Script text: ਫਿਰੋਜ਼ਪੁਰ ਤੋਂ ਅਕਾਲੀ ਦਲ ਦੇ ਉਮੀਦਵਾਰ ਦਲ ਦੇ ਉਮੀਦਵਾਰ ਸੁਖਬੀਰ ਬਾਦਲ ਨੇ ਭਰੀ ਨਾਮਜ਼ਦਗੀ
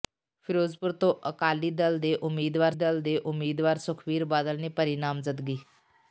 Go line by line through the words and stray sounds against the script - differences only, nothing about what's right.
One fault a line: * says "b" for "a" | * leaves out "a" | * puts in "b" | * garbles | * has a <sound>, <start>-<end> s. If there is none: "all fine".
all fine